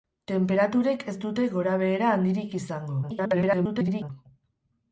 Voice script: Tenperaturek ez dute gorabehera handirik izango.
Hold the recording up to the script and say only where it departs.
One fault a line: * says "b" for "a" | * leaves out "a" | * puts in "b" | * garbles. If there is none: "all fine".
* garbles